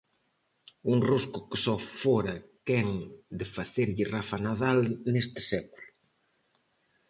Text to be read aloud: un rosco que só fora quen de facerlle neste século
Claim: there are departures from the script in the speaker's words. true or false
true